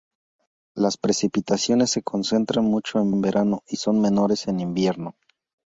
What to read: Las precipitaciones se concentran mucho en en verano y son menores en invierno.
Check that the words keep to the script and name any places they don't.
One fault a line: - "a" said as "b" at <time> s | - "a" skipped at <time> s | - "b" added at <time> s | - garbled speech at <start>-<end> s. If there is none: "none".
none